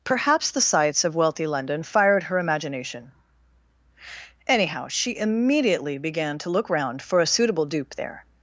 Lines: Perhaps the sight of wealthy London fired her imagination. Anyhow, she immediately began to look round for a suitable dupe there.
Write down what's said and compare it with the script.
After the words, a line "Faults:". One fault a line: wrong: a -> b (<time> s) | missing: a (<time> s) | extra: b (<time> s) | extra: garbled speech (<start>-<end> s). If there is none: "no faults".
Perhaps the sights of wealthy London fired her imagination. Anyhow, she immediately began to look round for a suitable dupe there.
Faults:
wrong: sight -> sights (0.6 s)